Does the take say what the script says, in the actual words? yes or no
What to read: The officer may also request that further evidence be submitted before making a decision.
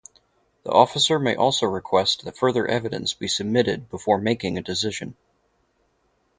yes